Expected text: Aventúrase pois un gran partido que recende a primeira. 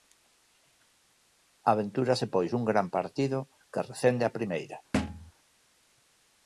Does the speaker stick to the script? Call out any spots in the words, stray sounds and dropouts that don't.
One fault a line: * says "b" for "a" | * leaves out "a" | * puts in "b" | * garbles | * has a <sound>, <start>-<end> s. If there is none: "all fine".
* has a thud, 4.9-5.3 s